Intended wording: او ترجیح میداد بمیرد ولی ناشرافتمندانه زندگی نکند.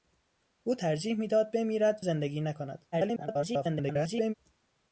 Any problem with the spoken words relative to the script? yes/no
yes